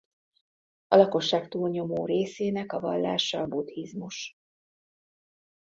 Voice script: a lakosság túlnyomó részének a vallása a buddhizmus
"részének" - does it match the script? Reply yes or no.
yes